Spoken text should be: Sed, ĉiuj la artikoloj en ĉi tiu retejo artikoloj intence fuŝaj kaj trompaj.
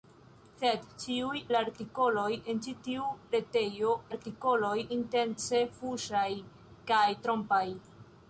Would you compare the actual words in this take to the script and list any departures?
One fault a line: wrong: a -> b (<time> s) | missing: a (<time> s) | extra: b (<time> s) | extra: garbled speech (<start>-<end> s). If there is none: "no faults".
no faults